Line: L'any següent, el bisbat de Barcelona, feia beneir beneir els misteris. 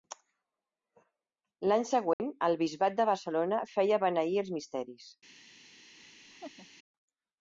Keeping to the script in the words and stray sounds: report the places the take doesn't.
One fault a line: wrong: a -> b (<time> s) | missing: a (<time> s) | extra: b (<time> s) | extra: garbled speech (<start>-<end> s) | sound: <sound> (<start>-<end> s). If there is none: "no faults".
sound: dropout (2.1-2.2 s)
missing: beneir (4.4 s)
sound: laugh (6.0-6.7 s)